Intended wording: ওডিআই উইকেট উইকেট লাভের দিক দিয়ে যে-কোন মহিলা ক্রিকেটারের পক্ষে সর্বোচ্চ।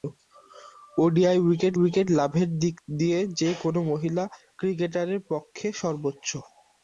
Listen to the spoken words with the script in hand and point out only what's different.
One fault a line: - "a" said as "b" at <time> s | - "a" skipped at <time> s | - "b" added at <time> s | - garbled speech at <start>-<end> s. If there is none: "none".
none